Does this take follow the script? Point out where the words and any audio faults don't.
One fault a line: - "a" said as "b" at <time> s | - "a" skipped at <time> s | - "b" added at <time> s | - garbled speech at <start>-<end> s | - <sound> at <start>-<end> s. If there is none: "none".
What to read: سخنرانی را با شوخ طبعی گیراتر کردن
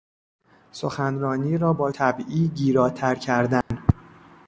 - "شوخ" skipped at 1.9 s
- dropout at 3.6-3.7 s